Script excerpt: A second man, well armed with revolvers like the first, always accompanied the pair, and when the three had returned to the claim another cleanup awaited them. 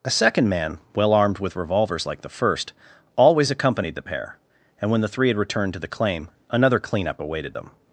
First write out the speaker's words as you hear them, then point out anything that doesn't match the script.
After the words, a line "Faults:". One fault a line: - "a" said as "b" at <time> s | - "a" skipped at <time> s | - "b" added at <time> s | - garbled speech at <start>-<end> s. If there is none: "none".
A second man, well armed with revolvers like the first, always accompanied the pair, and when the three had returned to the claim another cleanup awaited them.
Faults:
none